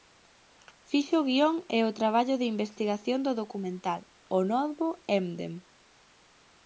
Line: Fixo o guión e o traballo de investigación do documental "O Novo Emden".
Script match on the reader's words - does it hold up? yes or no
yes